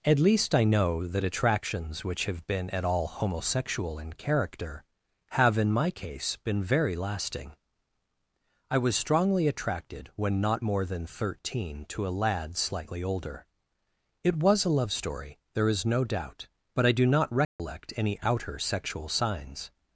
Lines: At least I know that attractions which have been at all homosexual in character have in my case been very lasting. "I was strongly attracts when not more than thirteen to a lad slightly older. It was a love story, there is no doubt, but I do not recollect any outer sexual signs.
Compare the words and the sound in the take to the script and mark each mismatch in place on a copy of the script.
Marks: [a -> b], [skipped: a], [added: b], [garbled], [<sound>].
At least I know that attractions which have been at all homosexual in character have in my case been very lasting. "I was strongly [attracts -> attracted] when not more than thirteen to a lad slightly older. It was a love story, there is no doubt, but I do not recollect [dropout] any outer sexual signs.